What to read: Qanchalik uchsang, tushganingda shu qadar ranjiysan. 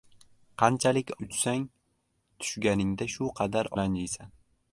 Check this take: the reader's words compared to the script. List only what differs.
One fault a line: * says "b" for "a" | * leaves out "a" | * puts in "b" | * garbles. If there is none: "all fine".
all fine